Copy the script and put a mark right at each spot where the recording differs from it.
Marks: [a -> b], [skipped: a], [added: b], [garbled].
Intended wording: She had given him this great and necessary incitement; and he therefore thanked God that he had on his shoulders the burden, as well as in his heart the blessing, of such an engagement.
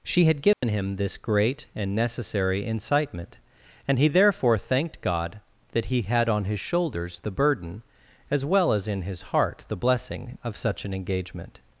She had given him this great and necessary incitement; and he therefore thanked God that he had on his shoulders the burden, as well as in his heart the blessing, of such an engagement.